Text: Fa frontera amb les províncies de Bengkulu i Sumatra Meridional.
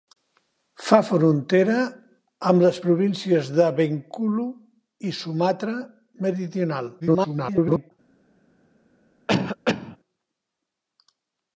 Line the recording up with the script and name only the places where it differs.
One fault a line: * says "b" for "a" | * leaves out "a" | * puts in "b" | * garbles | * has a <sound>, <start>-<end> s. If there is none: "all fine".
* garbles
* has a cough, 9.3-10.0 s